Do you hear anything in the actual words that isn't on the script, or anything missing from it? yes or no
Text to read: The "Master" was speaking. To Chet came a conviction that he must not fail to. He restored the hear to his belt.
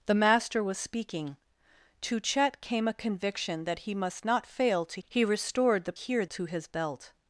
no